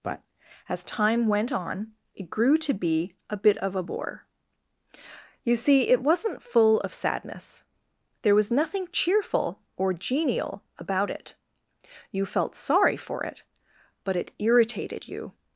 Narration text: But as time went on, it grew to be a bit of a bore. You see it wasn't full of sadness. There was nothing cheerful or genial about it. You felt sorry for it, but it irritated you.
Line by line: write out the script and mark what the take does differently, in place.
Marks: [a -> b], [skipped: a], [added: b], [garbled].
But as time went on, it grew to be a bit of a bore. You see it wasn't full of sadness. There was nothing cheerful or genial about it. You felt sorry for it, but it irritated you.